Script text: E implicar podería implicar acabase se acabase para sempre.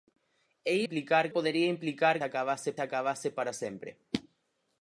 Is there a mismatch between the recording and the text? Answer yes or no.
no